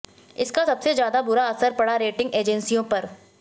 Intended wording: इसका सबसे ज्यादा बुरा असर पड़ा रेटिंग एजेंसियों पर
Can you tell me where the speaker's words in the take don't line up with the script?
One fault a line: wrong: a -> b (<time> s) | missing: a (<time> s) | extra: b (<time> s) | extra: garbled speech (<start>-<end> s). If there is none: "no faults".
no faults